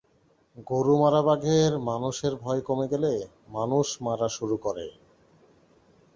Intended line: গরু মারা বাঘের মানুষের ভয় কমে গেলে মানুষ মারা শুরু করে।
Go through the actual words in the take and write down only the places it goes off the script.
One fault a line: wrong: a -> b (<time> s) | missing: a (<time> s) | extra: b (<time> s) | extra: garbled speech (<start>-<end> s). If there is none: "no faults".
no faults